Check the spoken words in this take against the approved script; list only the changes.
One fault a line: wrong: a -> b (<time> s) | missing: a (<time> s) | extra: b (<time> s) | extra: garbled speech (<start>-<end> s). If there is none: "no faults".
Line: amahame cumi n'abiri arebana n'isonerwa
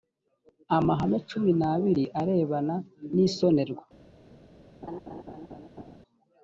no faults